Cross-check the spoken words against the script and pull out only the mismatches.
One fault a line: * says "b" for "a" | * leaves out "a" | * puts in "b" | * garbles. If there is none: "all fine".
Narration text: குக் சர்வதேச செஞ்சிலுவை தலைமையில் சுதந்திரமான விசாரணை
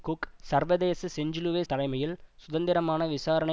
all fine